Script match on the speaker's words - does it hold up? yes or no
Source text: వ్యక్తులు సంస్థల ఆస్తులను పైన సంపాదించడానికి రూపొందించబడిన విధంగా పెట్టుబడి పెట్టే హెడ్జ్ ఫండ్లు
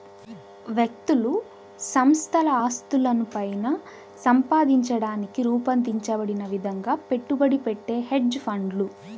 yes